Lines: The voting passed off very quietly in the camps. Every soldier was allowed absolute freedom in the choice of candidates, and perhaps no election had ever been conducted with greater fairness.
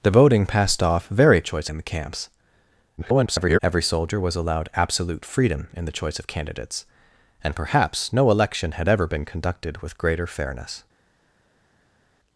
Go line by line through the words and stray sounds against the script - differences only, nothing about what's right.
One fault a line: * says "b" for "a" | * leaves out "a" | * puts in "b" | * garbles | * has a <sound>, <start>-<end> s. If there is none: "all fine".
* says "choice" for "quietly"
* garbles